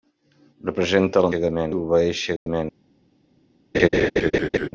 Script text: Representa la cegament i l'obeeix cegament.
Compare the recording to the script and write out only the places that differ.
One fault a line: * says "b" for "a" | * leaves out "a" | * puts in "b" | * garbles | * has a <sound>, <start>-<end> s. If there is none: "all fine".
* has a dropout, 2.4-2.5 s
* has a laugh, 3.7-4.7 s